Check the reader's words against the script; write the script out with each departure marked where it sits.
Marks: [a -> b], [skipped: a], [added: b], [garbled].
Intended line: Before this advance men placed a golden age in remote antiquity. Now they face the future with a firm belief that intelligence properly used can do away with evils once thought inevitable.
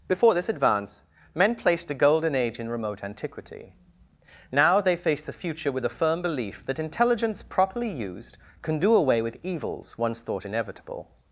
Before this advance men placed a golden age in remote antiquity. Now they face the future with a firm belief that intelligence properly used can do away with evils once thought inevitable.